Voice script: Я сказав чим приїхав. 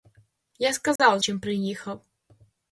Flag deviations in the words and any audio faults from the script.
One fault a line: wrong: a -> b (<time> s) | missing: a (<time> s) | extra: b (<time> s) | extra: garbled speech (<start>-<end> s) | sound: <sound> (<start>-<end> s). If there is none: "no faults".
sound: dropout (1.0-1.0 s)